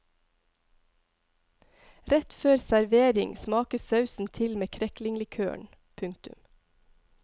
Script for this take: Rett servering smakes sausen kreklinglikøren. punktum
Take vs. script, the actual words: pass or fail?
fail